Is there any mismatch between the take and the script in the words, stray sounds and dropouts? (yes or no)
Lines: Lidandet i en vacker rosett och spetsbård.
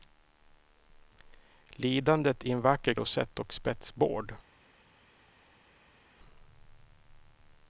no